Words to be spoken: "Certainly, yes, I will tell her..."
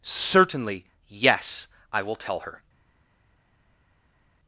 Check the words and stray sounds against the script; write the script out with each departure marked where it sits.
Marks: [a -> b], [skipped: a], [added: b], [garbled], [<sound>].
"Certainly, yes, I will tell her..."